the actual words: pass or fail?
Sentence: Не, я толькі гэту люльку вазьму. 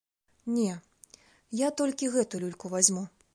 pass